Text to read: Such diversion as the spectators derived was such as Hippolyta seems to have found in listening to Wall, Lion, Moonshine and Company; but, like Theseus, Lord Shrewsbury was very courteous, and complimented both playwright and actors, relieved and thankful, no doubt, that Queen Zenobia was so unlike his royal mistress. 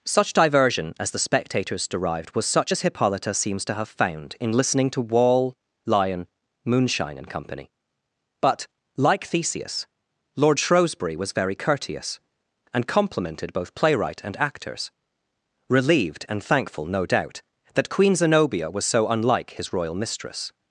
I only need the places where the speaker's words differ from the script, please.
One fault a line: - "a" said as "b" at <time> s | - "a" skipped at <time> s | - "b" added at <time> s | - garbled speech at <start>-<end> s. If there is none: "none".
none